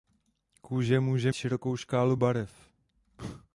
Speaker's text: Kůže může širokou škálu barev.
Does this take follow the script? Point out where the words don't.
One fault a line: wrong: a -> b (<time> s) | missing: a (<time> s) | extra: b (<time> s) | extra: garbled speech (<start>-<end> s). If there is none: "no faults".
no faults